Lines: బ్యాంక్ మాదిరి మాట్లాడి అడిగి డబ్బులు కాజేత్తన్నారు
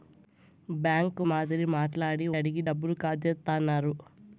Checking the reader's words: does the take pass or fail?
pass